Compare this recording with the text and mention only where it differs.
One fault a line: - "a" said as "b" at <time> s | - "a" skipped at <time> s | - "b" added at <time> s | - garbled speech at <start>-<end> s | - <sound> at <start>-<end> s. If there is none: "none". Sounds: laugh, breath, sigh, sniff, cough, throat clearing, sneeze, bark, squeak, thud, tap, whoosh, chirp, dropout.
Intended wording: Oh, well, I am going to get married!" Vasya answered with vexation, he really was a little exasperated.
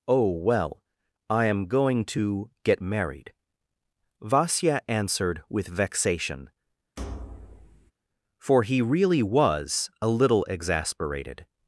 - thud at 7.0-7.9 s
- "for" added at 8.4 s